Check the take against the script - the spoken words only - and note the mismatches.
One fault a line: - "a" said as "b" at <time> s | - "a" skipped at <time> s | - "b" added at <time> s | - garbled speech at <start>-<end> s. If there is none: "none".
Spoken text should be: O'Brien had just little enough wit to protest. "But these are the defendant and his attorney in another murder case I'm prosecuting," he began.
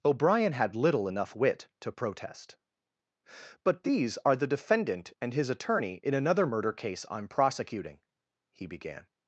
- "just" skipped at 0.8 s